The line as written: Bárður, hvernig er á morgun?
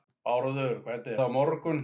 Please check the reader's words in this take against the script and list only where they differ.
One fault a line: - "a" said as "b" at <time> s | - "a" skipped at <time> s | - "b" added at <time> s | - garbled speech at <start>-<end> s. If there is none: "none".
none